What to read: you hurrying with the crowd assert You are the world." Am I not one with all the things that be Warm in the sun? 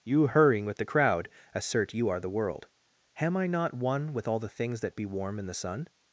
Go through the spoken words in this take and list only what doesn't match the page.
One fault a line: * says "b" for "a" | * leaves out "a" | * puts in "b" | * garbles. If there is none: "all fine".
all fine